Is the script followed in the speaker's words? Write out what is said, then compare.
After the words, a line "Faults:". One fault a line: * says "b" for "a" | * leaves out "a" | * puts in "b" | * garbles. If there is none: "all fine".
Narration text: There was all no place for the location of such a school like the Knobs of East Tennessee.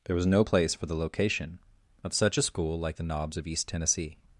There was no place for the location of such a school like the Knobs of East Tennessee.
Faults:
* leaves out "all"